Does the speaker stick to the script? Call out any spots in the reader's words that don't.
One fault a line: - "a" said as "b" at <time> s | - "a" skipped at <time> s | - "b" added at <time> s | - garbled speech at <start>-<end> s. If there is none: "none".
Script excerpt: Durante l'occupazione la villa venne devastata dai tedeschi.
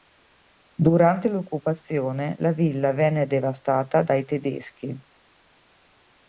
none